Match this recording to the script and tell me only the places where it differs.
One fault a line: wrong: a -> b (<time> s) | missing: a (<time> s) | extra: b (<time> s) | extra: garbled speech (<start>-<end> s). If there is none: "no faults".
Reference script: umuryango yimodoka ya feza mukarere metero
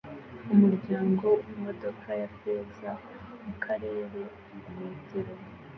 no faults